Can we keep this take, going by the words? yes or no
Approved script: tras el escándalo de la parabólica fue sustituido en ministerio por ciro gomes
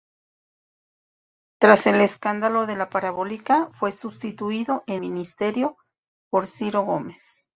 yes